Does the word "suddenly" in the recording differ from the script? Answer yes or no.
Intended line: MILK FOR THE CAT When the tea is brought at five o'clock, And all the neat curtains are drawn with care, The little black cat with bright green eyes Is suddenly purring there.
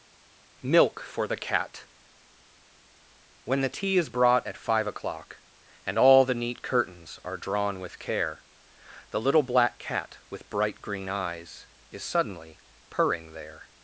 no